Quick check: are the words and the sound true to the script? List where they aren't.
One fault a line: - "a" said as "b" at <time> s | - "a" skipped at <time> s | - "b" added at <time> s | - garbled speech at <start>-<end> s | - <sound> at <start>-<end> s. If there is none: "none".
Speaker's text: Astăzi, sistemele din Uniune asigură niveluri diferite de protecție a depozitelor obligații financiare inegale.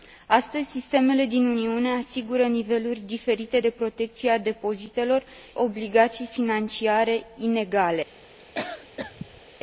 - cough at 8.4-9.4 s